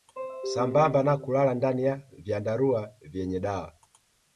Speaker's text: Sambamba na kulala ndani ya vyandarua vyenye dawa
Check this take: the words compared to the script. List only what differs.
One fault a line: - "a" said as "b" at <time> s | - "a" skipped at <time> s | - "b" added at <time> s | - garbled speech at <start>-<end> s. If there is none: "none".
none